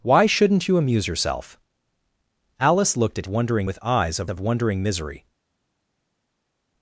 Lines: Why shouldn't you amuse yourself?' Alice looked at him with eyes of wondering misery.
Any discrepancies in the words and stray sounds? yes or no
yes